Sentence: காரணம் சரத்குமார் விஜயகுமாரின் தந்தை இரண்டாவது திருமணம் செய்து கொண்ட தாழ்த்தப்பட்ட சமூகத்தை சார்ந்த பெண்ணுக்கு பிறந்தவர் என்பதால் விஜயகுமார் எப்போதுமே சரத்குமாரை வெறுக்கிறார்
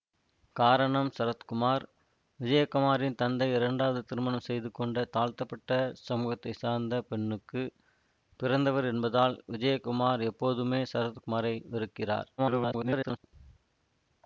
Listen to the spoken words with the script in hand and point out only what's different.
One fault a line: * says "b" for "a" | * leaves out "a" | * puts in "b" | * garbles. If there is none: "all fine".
* garbles